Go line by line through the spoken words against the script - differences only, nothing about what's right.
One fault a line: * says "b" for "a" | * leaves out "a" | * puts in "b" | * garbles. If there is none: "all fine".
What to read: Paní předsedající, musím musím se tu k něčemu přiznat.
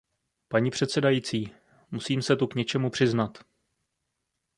* leaves out "musím"